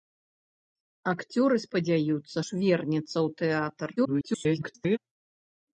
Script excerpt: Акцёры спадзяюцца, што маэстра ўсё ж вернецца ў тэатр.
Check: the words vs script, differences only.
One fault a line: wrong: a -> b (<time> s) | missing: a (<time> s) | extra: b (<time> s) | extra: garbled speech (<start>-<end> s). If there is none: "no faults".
missing: што маэстра ўсё (2.4 s)
extra: garbled speech (4.0-5.0 s)